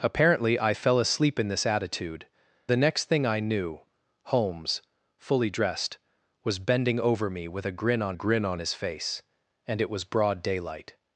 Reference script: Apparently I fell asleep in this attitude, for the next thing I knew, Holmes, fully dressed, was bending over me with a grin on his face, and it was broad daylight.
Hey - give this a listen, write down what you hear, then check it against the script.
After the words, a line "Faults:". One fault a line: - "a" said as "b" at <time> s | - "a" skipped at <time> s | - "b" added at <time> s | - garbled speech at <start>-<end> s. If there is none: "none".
Apparently I fell asleep in this attitude, the next thing I knew, Holmes, fully dressed, was bending over me with a grin on grin on his face, and it was broad daylight.
Faults:
- "for" skipped at 2.2 s
- "grin on" added at 8.1 s